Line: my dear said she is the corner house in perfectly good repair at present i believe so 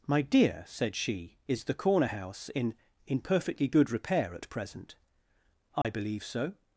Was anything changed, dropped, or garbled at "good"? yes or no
no